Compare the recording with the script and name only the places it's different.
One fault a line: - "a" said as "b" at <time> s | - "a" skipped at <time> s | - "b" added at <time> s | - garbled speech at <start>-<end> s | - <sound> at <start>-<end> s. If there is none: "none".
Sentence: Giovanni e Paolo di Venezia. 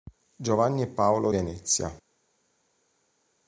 - "di" skipped at 1.3 s